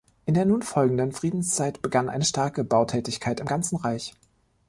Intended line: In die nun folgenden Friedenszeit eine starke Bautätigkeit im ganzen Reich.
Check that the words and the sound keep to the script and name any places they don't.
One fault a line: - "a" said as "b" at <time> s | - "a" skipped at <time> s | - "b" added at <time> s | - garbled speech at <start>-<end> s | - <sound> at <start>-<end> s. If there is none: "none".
- "die" said as "der" at 0.3 s
- "begann" added at 1.8 s